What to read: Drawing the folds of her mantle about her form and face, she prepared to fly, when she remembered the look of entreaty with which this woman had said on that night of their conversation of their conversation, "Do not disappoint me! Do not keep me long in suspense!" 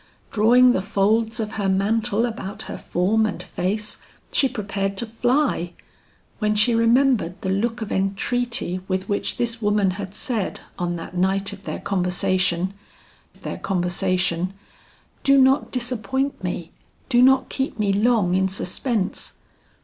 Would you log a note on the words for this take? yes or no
no